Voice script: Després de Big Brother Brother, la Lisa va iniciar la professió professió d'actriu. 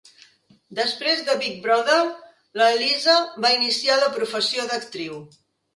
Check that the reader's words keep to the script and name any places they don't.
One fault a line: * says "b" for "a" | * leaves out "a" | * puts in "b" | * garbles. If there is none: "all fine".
* leaves out "Brother"
* leaves out "professió"